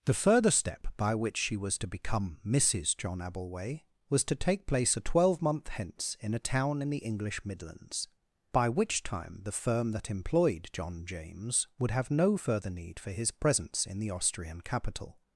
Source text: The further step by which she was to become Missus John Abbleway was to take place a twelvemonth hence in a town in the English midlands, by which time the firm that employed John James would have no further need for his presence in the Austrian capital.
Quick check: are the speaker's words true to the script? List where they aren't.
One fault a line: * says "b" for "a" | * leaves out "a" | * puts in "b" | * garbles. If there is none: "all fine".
all fine